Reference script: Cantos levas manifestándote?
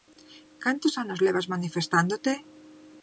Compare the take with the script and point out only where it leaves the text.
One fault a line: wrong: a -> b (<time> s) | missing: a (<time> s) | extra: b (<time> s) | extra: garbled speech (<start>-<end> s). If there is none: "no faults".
extra: anos (1.0 s)